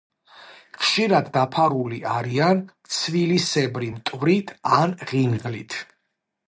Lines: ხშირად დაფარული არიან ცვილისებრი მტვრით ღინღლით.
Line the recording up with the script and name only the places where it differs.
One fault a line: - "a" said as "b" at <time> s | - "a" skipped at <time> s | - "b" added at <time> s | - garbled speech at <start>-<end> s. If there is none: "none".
- "ან" added at 4.8 s